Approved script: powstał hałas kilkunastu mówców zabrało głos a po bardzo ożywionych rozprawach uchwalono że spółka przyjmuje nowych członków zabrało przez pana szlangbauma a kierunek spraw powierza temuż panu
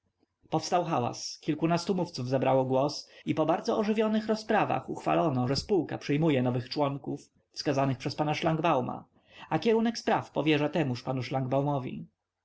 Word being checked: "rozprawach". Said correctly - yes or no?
yes